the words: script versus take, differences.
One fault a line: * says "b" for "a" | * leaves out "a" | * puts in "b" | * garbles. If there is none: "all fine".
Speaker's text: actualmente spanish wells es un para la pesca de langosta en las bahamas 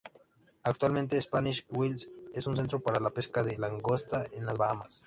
* puts in "centro"